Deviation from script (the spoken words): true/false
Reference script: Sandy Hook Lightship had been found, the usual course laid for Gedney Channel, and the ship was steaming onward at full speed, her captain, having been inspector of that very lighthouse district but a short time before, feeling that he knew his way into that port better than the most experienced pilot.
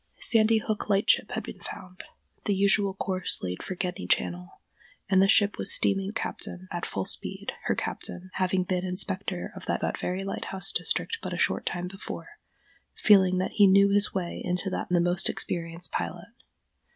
true